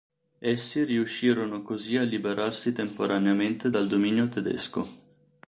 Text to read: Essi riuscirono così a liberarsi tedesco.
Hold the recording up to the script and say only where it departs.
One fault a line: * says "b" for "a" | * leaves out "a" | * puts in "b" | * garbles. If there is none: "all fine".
* puts in "temporaneamente dal dominio"